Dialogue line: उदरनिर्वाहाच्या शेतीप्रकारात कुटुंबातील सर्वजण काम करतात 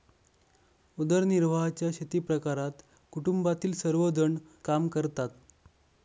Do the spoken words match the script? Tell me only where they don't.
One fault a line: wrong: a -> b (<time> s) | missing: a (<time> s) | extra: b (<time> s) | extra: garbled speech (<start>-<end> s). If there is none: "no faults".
no faults